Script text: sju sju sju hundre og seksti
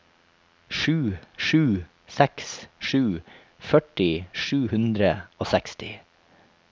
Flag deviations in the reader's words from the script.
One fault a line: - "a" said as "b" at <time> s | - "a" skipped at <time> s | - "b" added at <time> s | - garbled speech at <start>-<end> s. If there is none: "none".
- "seks sju førti" added at 2.1 s